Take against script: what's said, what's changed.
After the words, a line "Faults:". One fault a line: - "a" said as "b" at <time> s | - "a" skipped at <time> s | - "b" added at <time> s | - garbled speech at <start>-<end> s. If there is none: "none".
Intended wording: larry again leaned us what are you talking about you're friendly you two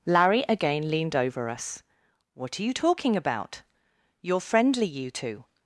larry again leaned over us what are you talking about you're friendly you two
Faults:
- "over" added at 1.1 s